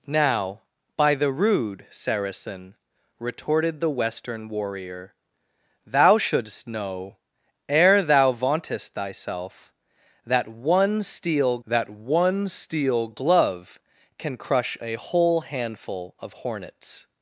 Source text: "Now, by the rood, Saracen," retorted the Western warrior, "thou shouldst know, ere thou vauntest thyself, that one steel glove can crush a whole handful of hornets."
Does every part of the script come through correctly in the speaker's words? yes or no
no